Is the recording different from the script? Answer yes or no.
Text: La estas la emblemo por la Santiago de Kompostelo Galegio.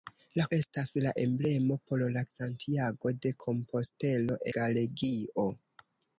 no